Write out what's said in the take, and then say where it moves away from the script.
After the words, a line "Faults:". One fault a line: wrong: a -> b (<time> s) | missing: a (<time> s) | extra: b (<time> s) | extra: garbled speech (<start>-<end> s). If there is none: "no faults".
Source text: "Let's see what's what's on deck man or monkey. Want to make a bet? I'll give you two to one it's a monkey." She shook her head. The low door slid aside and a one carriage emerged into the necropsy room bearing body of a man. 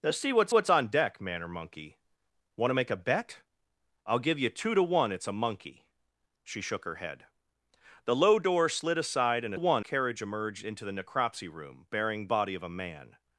"Let's see what's what's on deck man or monkey. Want to make a bet? I'll give you two to one it's a monkey." She shook her head. The low door slid aside and a one carriage emerged into the necropsy room bearing body of a man.
Faults:
no faults